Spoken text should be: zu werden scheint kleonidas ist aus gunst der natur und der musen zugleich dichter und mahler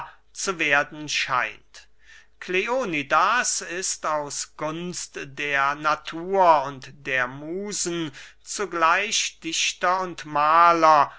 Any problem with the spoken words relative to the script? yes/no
no